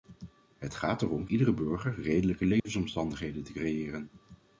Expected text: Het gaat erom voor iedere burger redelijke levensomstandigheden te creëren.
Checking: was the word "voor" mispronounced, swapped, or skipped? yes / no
yes